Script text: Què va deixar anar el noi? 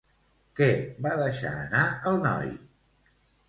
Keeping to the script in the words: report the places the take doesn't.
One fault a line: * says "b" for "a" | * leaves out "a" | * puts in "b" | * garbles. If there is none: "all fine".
all fine